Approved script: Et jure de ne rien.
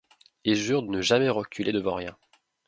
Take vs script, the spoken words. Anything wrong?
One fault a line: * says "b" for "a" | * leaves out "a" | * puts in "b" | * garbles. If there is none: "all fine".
* puts in "jamais reculer devant"